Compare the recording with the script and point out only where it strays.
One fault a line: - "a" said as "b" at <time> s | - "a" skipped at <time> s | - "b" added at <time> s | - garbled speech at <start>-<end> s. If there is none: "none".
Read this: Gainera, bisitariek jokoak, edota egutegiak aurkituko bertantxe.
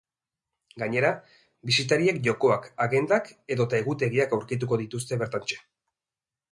- "agendak" added at 2.9 s
- "dituzte" added at 4.8 s